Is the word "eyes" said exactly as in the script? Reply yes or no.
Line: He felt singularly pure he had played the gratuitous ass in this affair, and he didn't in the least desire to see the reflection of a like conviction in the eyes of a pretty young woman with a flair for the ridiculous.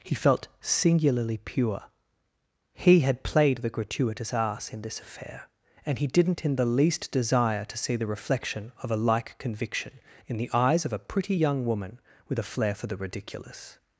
yes